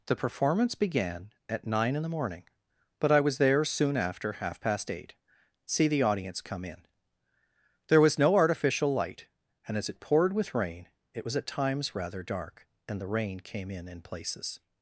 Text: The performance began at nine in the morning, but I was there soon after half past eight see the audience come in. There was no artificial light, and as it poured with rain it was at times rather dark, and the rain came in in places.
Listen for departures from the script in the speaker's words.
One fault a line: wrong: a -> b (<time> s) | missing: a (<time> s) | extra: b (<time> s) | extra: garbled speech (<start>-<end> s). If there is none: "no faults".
no faults